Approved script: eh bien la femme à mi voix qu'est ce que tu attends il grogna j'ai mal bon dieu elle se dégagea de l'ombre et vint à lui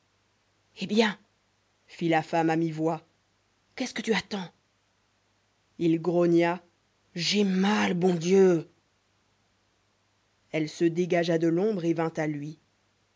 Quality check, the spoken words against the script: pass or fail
fail